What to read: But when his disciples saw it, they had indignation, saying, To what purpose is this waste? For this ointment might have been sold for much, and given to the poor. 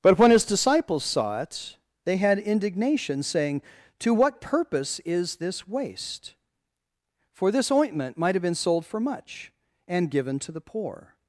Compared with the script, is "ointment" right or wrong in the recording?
right